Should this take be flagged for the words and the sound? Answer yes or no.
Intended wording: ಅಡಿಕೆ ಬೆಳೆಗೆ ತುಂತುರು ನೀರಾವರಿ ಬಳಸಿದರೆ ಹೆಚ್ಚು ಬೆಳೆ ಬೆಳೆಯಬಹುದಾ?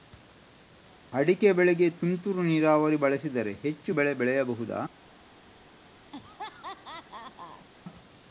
yes